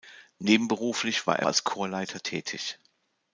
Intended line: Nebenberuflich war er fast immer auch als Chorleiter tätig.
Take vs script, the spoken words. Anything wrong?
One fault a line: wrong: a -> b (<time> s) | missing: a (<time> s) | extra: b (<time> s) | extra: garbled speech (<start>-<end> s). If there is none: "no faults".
missing: fast immer auch (1.4 s)